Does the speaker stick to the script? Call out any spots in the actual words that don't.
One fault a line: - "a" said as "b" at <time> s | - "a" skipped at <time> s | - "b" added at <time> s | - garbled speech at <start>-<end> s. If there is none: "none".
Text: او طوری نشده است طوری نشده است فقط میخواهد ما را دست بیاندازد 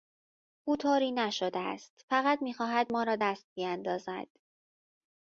- "طوری نشده است" skipped at 2.0 s